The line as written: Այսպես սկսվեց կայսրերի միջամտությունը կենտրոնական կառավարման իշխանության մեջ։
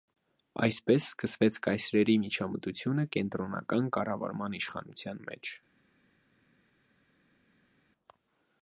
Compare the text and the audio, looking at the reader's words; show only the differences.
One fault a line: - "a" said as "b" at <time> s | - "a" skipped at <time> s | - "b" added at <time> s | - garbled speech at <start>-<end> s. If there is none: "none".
none